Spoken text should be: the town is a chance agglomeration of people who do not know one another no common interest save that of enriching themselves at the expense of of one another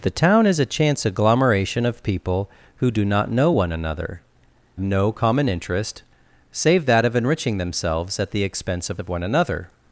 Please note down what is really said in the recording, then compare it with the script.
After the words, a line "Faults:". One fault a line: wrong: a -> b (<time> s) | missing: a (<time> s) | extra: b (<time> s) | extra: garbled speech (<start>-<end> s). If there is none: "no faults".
the town is a chance agglomeration of people who do not know one another no common interest save that of enriching themselves at the expense of of one another
Faults:
no faults